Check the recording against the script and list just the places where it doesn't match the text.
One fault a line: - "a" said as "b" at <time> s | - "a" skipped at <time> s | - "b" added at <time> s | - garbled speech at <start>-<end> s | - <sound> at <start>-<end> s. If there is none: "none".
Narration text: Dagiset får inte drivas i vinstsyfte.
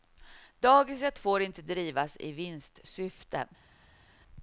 none